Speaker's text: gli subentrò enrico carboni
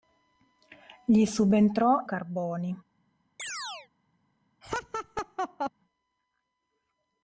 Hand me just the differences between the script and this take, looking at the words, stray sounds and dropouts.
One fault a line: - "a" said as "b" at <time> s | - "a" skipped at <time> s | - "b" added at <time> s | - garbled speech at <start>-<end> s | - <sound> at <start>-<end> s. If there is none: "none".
- "enrico" skipped at 2.0 s
- chirp at 3.4-3.9 s
- laugh at 4.6-5.7 s